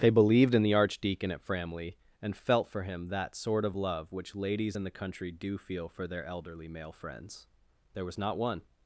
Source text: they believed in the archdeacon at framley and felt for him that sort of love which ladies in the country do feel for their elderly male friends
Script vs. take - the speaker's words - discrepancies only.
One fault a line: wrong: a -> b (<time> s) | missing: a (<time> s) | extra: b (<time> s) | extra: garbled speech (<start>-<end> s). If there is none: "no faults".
extra: there was not one (7.9 s)